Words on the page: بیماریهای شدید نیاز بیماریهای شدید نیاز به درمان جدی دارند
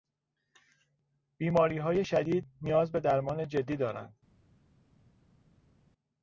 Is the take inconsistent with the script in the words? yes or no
yes